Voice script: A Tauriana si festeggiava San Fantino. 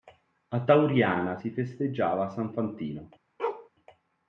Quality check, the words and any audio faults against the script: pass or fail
fail